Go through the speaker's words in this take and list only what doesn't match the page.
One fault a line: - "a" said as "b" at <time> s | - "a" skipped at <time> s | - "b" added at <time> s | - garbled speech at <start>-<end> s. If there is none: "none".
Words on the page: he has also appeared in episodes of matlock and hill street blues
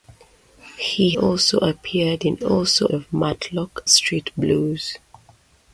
- "has" skipped at 1.2 s
- "episodes" said as "also" at 2.4 s
- "and hill" skipped at 3.9 s